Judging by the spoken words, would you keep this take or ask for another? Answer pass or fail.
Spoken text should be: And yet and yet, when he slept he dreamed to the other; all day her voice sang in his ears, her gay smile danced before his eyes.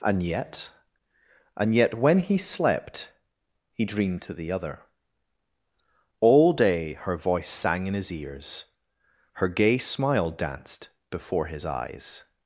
pass